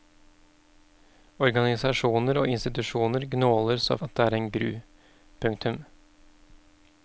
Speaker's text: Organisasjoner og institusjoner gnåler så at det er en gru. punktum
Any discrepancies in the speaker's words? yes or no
no